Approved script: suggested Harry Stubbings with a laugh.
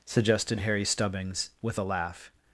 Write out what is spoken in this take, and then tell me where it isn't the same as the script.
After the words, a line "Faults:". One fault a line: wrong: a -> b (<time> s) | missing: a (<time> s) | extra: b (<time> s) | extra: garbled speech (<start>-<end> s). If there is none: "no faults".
suggested Harry Stubbings with a laugh.
Faults:
no faults